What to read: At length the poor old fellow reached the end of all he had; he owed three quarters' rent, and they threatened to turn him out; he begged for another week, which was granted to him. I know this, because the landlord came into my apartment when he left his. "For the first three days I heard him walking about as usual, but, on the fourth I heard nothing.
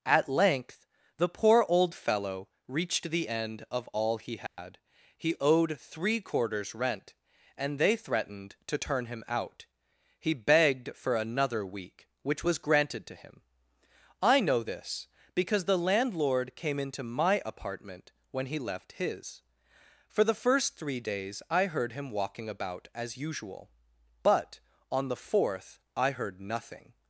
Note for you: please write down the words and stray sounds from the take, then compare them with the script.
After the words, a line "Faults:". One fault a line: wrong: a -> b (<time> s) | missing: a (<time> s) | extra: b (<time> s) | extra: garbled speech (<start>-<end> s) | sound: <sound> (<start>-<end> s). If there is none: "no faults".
At length the poor old fellow reached the end of all he had; he owed three quarters' rent, and they threatened to turn him out; he begged for another week, which was granted to him. I know this, because the landlord came into my apartment when he left his. "For the first three days I heard him walking about as usual, but, on the fourth I heard nothing.
Faults:
sound: dropout (4.5-4.6 s)